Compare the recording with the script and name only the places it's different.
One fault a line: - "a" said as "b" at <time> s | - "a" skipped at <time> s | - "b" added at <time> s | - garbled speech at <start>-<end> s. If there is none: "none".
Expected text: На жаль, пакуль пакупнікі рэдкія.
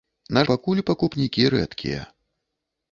- "жаль" skipped at 0.4 s